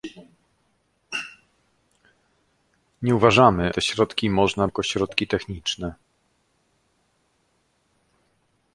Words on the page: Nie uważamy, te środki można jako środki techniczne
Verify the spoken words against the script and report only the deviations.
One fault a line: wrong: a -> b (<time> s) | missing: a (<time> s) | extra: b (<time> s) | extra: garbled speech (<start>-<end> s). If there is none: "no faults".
no faults